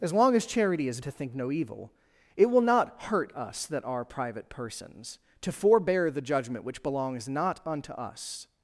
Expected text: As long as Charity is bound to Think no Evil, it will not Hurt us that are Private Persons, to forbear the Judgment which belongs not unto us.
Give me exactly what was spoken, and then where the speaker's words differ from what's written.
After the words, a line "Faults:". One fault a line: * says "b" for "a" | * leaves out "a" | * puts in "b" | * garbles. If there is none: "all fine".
As long as Charity is to Think no Evil, it will not Hurt us that are Private Persons, to forbear the Judgment which belongs not unto us.
Faults:
* leaves out "bound"